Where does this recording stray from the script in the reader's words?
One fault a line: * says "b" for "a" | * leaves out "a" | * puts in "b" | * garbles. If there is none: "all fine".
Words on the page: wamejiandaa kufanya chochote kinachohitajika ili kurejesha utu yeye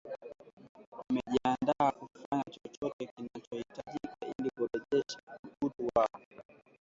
* says "wao" for "yeye"